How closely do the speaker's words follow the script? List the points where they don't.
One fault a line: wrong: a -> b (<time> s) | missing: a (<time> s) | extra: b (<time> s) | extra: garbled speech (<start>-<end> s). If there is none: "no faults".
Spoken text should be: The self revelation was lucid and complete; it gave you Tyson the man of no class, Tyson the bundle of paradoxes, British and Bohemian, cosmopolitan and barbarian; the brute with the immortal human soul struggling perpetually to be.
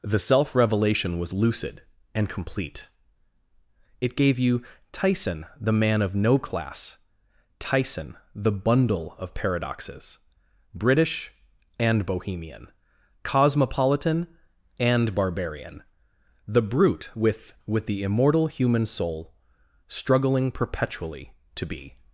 extra: with (17.6 s)